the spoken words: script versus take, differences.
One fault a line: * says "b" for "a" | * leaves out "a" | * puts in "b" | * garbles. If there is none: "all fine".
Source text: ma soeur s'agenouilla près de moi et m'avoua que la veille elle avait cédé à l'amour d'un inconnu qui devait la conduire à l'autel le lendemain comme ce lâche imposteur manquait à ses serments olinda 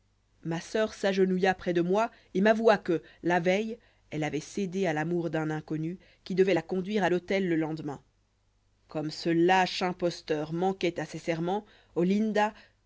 all fine